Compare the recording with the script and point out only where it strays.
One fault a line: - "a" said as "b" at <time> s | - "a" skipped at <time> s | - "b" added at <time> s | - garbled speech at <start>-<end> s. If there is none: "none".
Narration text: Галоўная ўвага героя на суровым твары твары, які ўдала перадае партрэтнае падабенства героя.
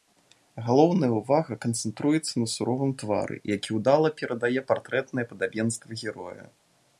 - "героя" said as "канцэнтруецца" at 1.6 s
- "твары" skipped at 3.4 s